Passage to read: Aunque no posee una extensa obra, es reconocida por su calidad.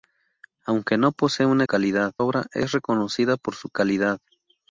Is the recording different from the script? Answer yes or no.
yes